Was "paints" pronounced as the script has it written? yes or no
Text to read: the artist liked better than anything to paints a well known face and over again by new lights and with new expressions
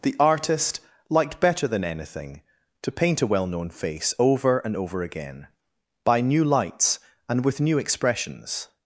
no